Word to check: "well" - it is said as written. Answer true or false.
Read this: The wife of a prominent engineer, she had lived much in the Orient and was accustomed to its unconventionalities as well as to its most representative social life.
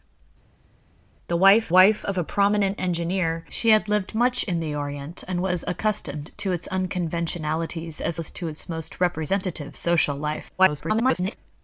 false